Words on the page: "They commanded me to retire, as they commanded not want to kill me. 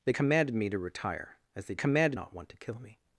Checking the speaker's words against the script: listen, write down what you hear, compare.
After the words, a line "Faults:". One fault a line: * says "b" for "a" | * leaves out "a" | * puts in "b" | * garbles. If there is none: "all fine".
"They commanded me to retire, as they commanded not want to kill me.
Faults:
all fine